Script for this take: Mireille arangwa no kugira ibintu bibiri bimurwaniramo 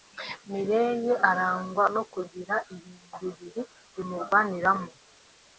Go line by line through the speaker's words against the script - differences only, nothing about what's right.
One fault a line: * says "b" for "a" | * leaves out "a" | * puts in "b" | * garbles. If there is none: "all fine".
all fine